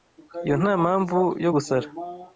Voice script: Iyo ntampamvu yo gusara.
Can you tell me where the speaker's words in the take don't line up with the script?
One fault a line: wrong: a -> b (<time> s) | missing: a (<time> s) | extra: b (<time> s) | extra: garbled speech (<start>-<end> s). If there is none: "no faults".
no faults